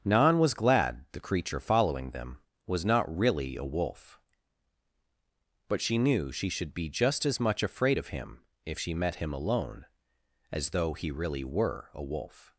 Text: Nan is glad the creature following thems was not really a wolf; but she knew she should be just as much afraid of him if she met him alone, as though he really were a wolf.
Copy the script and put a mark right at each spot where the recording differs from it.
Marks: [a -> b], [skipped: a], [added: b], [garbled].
Nan [is -> was] glad the creature following [thems -> them] was not really a wolf; but she knew she should be just as much afraid of him if she met him alone, as though he really were a wolf.